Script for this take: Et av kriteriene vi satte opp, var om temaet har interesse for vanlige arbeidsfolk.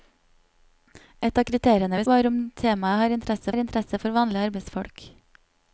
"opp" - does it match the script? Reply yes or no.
no